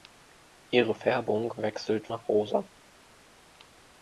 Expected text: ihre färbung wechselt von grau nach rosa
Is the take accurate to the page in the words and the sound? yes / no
no